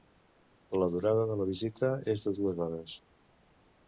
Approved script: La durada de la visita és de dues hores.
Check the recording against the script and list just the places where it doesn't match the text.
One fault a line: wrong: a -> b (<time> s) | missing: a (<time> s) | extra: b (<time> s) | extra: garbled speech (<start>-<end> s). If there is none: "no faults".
no faults